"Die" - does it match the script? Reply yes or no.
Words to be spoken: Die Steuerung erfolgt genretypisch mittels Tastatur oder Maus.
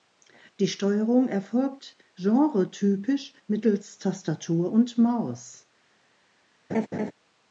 yes